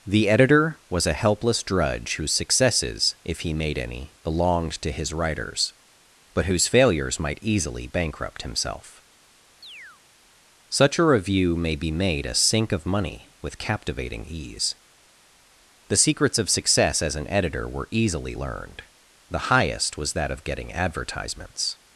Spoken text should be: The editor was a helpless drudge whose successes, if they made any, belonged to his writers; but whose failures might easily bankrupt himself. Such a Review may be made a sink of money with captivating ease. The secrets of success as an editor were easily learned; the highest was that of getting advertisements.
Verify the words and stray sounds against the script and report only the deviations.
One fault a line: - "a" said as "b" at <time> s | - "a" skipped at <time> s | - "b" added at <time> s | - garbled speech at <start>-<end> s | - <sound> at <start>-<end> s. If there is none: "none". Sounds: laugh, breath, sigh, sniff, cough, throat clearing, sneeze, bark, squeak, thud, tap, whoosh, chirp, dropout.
- "they" said as "he" at 3.4 s
- chirp at 9.6-10.0 s